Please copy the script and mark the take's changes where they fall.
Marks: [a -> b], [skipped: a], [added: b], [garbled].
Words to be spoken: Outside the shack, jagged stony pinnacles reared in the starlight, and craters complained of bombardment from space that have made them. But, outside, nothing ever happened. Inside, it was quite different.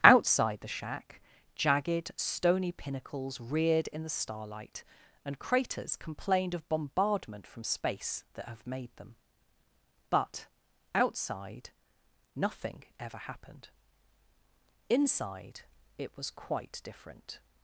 Outside the shack, jagged stony pinnacles reared in the starlight, and craters complained of bombardment from space that have made them. But, outside, nothing ever happened. Inside, it was quite different.